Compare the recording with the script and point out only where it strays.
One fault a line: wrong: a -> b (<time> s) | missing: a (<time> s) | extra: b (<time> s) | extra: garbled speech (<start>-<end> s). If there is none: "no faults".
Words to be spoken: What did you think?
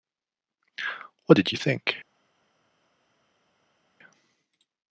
no faults